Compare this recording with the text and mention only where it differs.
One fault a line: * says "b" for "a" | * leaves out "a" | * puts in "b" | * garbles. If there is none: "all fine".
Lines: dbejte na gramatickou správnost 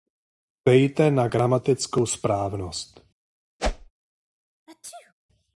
all fine